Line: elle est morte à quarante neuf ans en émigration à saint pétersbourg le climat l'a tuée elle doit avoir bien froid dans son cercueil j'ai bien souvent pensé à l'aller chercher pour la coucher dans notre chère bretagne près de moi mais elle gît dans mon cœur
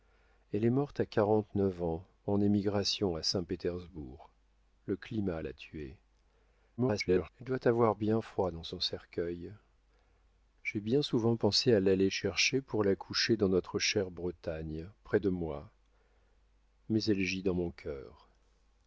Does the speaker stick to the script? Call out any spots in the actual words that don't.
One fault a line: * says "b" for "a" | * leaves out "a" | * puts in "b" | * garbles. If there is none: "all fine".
* garbles